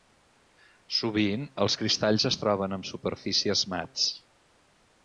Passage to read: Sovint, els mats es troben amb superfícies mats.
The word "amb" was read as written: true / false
true